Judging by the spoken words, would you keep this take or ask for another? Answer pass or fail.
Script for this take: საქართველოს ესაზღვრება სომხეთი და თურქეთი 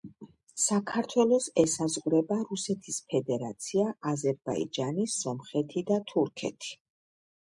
fail